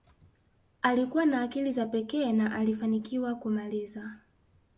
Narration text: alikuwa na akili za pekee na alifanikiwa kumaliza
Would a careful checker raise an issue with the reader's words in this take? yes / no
no